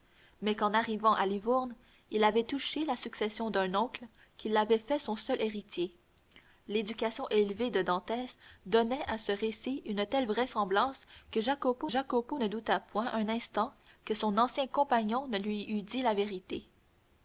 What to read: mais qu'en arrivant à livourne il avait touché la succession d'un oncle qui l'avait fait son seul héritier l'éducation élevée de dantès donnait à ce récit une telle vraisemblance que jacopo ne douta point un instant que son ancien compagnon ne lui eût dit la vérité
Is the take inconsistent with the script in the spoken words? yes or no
yes